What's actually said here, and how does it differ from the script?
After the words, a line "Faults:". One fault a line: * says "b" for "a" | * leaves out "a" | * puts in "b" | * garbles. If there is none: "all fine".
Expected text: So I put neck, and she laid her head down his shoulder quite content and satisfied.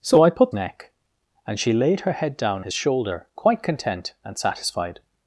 So I put neck, and she laid her head down his shoulder quite content and satisfied.
Faults:
all fine